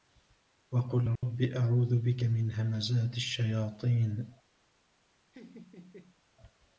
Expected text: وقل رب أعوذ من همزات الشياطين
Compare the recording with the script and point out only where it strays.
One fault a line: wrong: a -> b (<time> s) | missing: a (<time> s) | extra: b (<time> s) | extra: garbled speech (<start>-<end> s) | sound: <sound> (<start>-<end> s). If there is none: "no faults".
sound: dropout (1.2-1.2 s)
extra: بك (2.0 s)
sound: laugh (5.3-6.2 s)